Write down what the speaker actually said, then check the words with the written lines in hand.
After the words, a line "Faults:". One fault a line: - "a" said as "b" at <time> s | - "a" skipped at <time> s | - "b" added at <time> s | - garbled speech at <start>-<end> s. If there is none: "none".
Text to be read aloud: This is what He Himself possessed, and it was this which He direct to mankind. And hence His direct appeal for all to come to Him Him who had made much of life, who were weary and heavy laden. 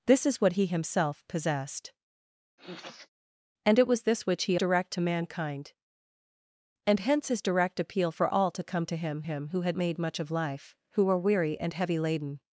This is what He Himself possessed, and it was this which He direct to mankind. And hence His direct appeal for all to come to Him Him who had made much of life, who were weary and heavy laden.
Faults:
none